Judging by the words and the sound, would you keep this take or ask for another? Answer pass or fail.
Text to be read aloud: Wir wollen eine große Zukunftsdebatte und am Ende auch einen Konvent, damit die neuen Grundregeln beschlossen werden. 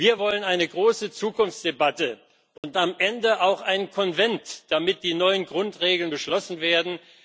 fail